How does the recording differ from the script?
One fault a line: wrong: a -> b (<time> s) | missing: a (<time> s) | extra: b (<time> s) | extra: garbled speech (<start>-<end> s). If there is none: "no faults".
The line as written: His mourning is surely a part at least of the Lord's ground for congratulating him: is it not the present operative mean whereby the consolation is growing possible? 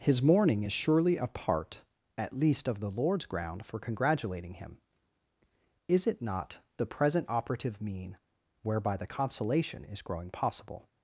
no faults